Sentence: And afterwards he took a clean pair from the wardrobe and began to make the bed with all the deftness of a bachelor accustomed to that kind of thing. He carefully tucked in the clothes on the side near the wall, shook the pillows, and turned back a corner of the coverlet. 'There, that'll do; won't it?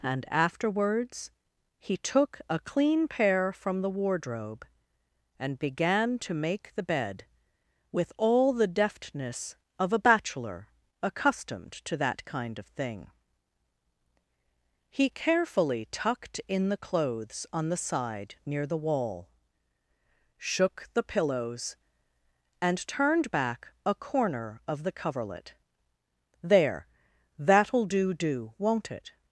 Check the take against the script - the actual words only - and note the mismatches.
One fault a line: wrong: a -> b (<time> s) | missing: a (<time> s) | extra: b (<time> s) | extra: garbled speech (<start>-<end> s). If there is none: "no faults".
extra: do (28.1 s)